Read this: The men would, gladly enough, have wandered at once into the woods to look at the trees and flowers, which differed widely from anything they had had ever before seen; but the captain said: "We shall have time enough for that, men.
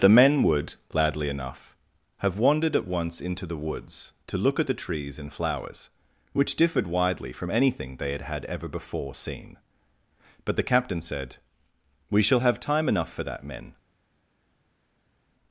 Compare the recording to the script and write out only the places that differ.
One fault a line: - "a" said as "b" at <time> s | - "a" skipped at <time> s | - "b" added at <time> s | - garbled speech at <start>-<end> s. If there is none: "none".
none